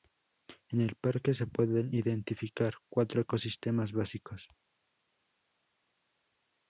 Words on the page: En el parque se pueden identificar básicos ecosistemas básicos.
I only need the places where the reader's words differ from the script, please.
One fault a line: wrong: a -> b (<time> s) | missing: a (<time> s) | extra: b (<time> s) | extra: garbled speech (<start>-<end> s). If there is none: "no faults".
wrong: básicos -> cuatro (2.9 s)